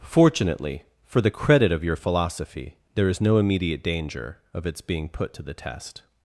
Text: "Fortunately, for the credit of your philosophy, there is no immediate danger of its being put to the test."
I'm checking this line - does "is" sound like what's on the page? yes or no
yes